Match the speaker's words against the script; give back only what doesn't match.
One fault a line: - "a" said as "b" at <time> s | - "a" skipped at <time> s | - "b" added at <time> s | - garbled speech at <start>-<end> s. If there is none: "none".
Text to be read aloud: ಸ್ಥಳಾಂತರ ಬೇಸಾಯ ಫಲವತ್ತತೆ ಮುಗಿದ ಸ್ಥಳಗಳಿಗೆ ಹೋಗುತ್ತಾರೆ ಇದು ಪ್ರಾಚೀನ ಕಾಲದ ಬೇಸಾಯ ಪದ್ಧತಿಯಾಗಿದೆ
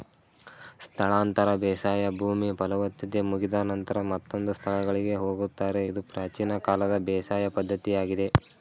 - "ಭೂಮಿ" added at 2.2 s
- "ನಂತರ ಮತ್ತೊಂದು" added at 3.7 s